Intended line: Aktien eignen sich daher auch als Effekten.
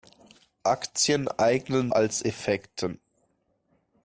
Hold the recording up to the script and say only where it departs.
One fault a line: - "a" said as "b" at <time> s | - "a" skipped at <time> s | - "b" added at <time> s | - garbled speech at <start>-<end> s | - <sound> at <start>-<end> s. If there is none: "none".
- "sich daher auch" skipped at 1.9 s